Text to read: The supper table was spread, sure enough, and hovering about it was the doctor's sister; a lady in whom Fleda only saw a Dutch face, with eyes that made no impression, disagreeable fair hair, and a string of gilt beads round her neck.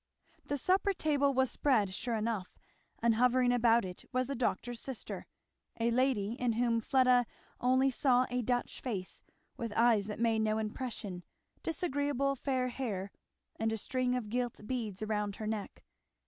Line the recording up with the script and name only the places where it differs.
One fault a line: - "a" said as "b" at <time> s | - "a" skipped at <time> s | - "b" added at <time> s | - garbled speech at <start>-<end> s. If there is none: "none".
none